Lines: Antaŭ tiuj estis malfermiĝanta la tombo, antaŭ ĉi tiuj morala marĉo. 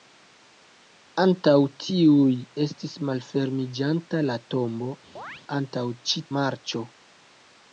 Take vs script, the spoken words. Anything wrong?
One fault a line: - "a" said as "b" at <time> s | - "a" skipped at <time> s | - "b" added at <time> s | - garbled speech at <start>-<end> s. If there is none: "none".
- "tiuj morala" skipped at 6.2 s